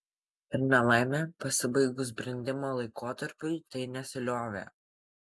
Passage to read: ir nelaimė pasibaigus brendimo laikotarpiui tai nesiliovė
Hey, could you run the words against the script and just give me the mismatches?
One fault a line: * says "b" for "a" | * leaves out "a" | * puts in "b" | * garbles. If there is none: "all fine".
all fine